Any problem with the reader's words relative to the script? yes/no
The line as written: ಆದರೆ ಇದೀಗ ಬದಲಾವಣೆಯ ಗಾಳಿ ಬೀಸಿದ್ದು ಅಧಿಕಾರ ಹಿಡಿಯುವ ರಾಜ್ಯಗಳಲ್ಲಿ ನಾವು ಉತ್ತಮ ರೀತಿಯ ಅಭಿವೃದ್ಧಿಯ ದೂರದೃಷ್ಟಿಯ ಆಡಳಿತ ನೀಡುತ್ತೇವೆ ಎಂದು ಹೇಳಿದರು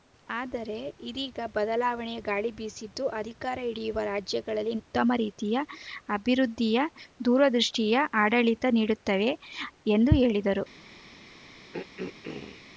yes